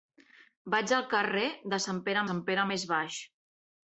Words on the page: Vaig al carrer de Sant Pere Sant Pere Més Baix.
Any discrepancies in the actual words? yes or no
no